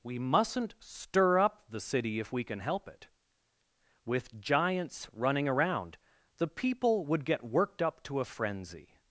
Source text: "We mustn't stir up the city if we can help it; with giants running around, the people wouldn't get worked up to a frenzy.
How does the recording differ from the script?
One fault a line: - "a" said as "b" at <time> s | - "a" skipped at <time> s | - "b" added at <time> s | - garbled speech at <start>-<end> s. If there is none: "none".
- "wouldn't" said as "would" at 7.0 s